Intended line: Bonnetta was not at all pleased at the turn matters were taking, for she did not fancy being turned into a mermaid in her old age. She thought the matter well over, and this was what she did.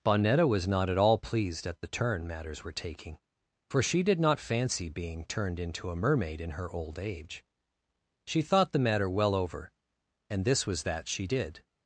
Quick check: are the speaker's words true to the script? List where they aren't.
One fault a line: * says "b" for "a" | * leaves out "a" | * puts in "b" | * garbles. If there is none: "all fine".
* says "that" for "what"